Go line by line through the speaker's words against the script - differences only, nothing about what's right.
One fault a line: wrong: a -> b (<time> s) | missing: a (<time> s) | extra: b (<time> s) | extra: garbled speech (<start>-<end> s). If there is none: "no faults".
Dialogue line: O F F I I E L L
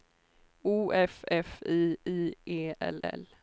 no faults